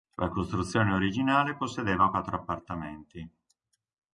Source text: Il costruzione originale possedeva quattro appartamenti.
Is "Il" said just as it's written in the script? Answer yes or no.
no